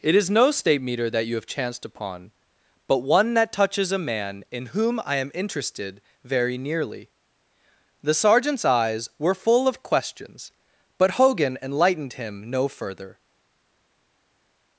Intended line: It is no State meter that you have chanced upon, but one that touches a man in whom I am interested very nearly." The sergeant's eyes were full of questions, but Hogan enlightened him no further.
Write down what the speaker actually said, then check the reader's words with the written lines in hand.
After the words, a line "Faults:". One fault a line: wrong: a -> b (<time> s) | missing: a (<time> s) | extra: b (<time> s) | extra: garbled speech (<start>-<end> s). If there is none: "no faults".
It is no State meter that you have chanced upon, but one that touches a man in whom I am interested very nearly." The sergeant's eyes were full of questions, but Hogan enlightened him no further.
Faults:
no faults